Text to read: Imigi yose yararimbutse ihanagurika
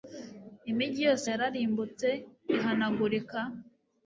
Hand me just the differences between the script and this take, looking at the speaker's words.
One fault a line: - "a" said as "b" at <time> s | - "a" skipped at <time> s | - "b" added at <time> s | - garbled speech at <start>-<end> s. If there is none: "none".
none